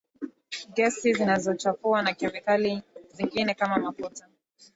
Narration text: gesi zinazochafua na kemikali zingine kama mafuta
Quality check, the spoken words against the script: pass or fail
pass